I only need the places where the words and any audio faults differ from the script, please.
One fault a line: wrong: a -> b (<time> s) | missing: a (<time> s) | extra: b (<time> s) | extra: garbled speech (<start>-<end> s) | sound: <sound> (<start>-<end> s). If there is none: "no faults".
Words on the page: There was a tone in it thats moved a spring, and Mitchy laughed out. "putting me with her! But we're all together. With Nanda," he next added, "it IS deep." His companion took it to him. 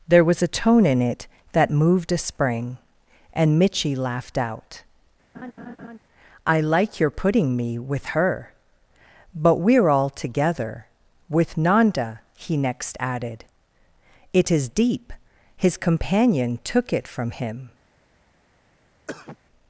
wrong: thats -> that (1.5 s)
sound: laugh (5.3-6.0 s)
extra: I like your (6.5 s)
wrong: to -> from (17.1 s)
sound: cough (19.1-19.4 s)